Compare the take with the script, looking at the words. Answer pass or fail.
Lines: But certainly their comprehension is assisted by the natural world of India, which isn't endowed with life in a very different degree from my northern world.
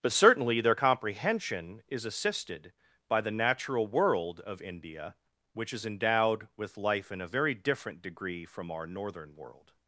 fail